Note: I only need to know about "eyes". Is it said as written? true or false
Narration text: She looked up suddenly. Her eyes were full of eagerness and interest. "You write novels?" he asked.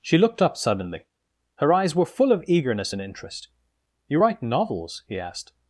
true